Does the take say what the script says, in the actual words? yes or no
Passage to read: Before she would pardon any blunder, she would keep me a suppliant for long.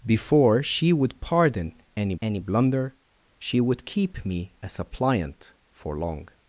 no